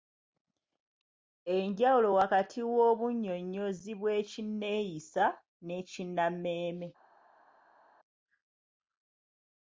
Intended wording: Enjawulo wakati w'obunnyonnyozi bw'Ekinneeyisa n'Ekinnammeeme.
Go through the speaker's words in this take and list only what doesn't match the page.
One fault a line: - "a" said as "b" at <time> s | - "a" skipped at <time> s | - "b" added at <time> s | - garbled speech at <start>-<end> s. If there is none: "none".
none